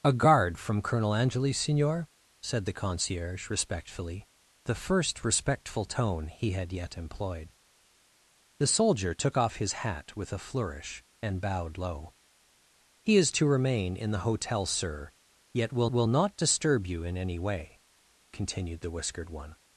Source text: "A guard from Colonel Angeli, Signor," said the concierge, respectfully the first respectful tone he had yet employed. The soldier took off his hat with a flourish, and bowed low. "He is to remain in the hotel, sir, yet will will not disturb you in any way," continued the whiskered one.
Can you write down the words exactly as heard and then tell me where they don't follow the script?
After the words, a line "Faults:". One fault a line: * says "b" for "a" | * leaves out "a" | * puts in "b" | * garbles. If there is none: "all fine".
"A guard from Colonel Angeli, Signor," said the concierge, respectfully the first respectful tone he had yet employed. The soldier took off his hat with a flourish, and bowed low. "He is to remain in the hotel, sir, yet will will not disturb you in any way," continued the whiskered one.
Faults:
all fine